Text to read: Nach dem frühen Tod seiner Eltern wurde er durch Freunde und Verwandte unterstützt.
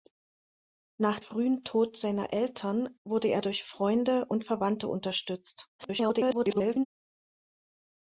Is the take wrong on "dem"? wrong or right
wrong